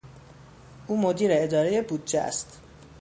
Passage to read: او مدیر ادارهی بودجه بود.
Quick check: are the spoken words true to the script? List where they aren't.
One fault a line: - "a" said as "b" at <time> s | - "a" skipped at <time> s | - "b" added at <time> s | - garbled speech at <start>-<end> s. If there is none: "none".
- "بود" said as "است" at 2.2 s